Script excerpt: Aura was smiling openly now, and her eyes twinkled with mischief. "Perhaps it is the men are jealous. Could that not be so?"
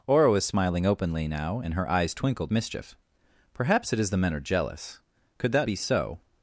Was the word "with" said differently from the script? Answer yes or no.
yes